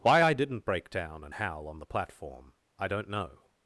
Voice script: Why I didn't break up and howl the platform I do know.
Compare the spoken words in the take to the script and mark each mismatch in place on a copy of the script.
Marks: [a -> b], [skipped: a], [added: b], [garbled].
Why I didn't break [up -> down] and howl [added: on] the platform I [do -> don't] know.